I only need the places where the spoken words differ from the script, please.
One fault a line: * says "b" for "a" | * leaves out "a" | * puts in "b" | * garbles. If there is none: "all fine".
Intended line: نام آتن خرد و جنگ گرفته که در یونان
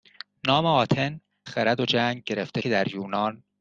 all fine